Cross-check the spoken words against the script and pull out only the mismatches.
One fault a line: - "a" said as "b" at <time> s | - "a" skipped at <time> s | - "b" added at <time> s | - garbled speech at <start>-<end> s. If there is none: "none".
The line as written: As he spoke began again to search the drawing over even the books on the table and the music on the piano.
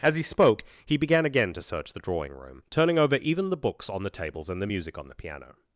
- "he" added at 0.8 s
- "room turning" added at 2.3 s
- "table" said as "tables" at 4.1 s